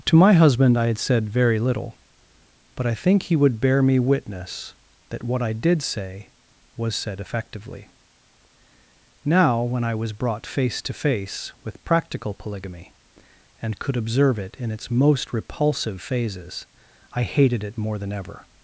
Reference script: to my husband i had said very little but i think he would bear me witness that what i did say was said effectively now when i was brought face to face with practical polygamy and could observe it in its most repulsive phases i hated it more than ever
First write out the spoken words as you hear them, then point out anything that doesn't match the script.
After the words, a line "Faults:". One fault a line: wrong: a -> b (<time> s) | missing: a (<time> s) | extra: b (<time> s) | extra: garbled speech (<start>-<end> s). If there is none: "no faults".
to my husband i had said very little but i think he would bear me witness that what i did say was said effectively now when i was brought face to face with practical polygamy and could observe it in its most repulsive phases i hated it more than ever
Faults:
no faults